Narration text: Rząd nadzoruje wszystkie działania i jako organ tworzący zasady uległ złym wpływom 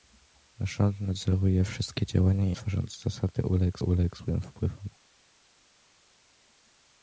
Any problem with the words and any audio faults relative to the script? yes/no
yes